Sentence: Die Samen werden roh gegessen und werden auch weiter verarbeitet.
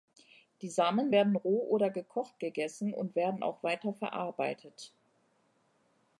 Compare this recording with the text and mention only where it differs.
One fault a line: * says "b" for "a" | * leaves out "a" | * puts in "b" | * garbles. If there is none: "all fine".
* puts in "oder gekocht"